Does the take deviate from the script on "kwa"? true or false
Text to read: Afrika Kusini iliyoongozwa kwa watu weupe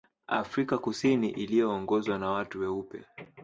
true